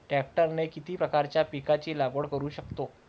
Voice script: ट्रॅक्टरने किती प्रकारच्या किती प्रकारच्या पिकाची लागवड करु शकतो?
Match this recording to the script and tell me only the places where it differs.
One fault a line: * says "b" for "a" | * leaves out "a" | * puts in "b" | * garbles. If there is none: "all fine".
* leaves out "किती प्रकारच्या"